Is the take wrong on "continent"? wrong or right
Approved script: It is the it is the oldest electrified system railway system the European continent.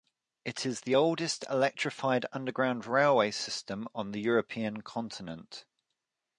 right